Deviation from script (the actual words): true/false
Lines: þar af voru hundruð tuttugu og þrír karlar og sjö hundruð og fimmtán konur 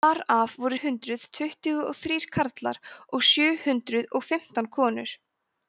false